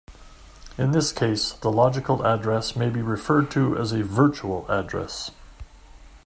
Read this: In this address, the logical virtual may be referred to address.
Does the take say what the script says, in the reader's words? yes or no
no